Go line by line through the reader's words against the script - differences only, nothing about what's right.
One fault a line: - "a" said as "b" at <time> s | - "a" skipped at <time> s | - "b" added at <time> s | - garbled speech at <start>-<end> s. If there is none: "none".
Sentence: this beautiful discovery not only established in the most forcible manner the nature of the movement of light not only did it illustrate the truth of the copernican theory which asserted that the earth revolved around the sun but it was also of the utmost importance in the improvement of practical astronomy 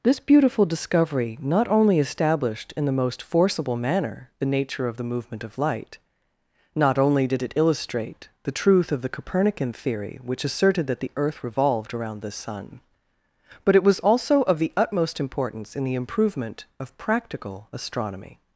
none